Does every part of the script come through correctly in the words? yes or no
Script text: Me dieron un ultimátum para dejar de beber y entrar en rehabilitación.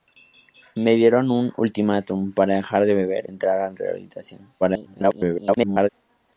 no